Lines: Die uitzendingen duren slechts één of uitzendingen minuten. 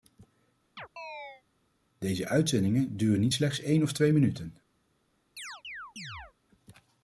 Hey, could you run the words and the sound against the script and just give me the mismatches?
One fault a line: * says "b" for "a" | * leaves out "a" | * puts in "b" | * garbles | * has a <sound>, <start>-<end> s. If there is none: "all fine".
* has a chirp, 0.8-1.4 s
* says "Deze" for "Die"
* puts in "niet"
* says "twee" for "uitzendingen"
* has a chirp, 5.4-6.3 s